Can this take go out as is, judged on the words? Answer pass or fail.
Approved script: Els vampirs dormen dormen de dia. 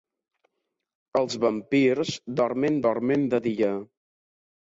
pass